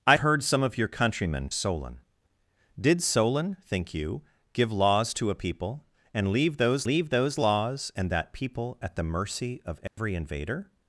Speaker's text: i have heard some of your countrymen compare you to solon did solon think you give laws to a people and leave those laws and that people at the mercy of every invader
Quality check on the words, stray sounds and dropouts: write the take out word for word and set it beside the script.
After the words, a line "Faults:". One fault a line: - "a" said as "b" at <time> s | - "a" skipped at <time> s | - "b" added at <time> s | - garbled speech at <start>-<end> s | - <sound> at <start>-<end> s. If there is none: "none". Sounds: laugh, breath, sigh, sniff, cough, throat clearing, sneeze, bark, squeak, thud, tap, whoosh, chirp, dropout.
i heard some of your countrymen solon did solon think you give laws to a people and leave those leave those laws and that people at the mercy of every invader
Faults:
- "have" skipped at 0.2 s
- "compare you to" skipped at 1.5 s
- "leave those" added at 6.8 s
- dropout at 9.9-10.0 s